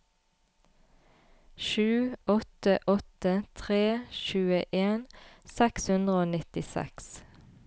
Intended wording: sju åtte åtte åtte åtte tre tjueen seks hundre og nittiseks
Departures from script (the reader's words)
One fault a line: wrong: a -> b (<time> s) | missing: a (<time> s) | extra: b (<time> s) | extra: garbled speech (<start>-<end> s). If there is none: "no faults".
missing: åtte åtte (3.3 s)